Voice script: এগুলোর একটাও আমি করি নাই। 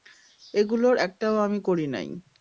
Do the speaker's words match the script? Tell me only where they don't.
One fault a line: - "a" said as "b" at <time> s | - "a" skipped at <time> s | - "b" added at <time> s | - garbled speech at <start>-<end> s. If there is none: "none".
none